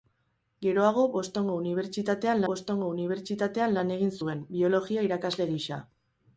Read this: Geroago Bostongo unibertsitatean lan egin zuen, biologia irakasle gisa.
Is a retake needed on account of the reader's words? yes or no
yes